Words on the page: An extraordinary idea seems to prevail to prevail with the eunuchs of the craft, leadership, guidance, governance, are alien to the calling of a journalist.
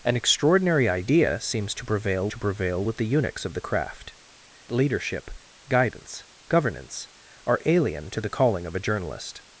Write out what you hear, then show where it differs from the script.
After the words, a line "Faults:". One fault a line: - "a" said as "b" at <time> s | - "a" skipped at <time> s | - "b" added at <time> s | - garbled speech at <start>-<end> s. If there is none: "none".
An extraordinary idea seems to prevail to prevail with the eunuchs of the craft, leadership, guidance, governance, are alien to the calling of a journalist.
Faults:
none